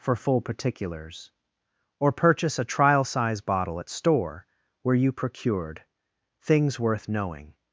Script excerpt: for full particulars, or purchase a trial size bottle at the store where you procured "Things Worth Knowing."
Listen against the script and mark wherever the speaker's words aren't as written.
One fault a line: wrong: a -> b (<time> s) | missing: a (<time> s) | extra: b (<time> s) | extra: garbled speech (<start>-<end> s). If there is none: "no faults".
missing: the (3.9 s)